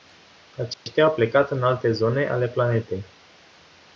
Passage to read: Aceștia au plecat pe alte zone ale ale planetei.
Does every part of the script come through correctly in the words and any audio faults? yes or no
no